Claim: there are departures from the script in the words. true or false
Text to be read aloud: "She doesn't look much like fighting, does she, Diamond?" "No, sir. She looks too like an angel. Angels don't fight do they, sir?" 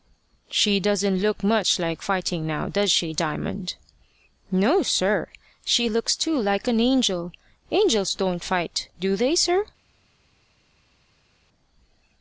true